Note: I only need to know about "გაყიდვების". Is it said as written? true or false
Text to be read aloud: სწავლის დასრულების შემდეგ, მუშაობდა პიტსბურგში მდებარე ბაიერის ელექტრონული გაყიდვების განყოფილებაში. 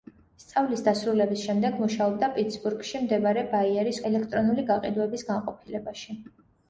true